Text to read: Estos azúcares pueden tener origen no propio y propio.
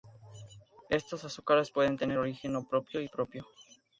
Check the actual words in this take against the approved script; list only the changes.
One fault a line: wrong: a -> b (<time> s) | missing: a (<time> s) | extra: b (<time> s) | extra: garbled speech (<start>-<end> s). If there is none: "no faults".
no faults